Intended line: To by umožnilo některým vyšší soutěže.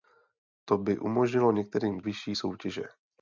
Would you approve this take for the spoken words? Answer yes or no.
yes